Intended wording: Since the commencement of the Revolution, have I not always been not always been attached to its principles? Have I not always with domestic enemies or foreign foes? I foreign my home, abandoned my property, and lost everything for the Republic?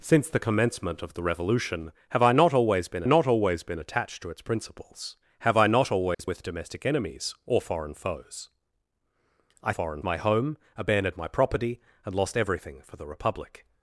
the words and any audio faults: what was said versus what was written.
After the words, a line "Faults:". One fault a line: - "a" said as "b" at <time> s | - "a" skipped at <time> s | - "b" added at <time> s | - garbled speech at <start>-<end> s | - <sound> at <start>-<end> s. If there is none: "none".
Since the commencement of the Revolution, have I not always been not always been attached to its principles? Have I not always with domestic enemies or foreign foes? I foreign my home, abandoned my property, and lost everything for the Republic?
Faults:
- dropout at 6.1-6.2 s